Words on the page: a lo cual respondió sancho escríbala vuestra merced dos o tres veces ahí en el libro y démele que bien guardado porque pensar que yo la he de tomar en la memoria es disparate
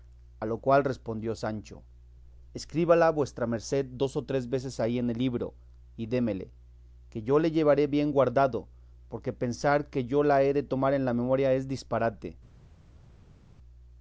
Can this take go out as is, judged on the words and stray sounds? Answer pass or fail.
fail